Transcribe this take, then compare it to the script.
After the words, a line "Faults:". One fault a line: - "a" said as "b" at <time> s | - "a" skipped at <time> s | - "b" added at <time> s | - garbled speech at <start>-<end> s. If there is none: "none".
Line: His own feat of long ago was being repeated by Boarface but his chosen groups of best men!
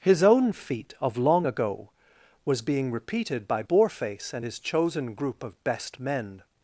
His own feat of long ago was being repeated by Boarface and his chosen group of best men!
Faults:
- "but" said as "and" at 4.3 s
- "groups" said as "group" at 5.1 s